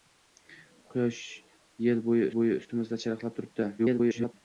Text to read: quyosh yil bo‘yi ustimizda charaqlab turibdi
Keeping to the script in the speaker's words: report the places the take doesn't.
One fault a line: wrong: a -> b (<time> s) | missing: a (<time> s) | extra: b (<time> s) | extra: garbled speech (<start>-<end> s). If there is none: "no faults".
extra: bo‘yi (2.4 s)
extra: garbled speech (3.8-4.3 s)